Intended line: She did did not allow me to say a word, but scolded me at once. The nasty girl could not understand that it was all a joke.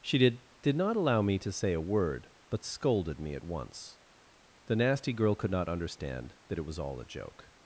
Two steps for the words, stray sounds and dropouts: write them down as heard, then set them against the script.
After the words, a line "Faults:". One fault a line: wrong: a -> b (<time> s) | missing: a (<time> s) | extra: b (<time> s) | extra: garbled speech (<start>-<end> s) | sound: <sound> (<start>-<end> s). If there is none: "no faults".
She did did not allow me to say a word, but scolded me at once. The nasty girl could not understand that it was all a joke.
Faults:
no faults